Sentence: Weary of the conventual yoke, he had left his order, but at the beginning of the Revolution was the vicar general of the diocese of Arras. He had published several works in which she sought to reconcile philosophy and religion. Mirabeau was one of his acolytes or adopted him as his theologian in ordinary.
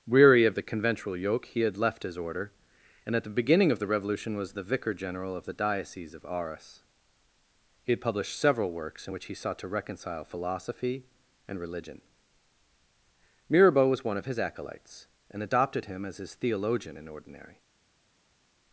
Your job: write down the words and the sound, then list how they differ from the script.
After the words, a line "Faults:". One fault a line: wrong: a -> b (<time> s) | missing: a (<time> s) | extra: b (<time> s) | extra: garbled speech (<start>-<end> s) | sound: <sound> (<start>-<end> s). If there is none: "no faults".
Weary of the conventual yoke, he had left his order, and at the beginning of the Revolution was the vicar general of the diocese of Arras. He had published several works in which he sought to reconcile philosophy and religion. Mirabeau was one of his acolytes and adopted him as his theologian in ordinary.
Faults:
wrong: but -> and (3.1 s)
wrong: she -> he (9.2 s)
wrong: or -> and (15.3 s)